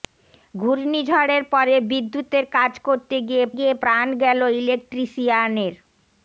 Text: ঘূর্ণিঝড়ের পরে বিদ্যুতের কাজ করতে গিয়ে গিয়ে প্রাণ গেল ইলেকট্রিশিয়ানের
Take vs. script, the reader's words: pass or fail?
pass